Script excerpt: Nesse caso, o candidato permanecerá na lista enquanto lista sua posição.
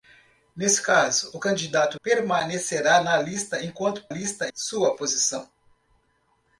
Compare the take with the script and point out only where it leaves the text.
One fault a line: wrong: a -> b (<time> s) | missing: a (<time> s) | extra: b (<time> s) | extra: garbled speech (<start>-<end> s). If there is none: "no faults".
no faults